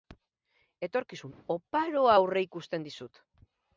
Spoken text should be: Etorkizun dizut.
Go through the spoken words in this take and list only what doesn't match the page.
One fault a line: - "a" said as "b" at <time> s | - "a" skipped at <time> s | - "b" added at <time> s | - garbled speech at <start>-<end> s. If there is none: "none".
- "oparoa aurreikusten" added at 1.6 s